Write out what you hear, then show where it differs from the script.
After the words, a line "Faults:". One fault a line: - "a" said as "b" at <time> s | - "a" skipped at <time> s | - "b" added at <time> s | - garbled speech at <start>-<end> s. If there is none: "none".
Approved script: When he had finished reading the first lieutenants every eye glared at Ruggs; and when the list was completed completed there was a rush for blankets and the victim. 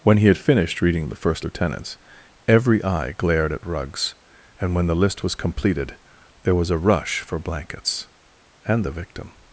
When he had finished reading the first lieutenants every eye glared at Ruggs; and when the list was completed there was a rush for blankets and the victim.
Faults:
- "completed" skipped at 6.0 s